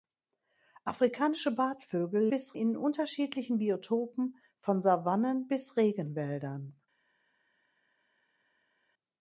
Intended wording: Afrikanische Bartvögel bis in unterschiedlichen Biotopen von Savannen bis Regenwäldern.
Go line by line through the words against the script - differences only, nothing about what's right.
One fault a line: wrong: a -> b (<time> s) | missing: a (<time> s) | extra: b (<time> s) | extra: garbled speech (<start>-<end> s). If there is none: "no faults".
no faults